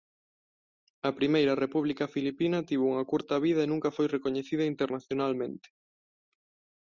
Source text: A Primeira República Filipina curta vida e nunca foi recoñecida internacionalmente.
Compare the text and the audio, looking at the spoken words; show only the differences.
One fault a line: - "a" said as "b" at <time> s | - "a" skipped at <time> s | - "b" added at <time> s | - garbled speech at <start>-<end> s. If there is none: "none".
- "tivo unha" added at 2.7 s